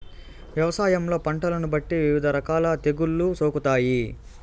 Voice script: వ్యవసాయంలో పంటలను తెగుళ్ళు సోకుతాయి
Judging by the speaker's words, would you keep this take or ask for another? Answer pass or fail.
fail